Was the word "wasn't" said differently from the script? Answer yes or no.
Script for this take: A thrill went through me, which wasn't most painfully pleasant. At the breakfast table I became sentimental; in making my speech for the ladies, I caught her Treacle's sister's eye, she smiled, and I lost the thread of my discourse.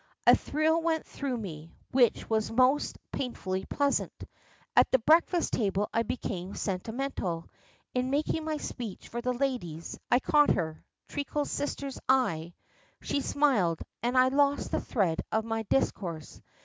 yes